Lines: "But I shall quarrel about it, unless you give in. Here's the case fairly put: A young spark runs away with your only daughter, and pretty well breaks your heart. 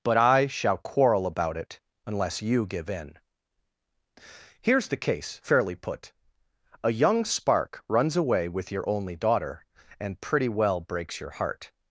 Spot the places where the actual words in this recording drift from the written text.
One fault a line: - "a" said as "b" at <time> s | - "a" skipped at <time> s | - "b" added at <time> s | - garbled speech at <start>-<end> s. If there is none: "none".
none